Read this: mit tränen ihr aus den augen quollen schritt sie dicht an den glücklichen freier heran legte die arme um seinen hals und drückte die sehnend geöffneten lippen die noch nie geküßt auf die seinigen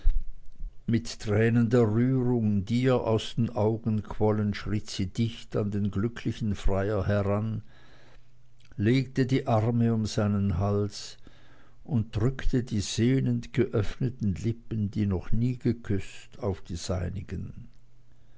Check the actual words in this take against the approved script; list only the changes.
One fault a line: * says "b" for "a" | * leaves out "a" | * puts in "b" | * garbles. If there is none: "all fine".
* puts in "der rührung die"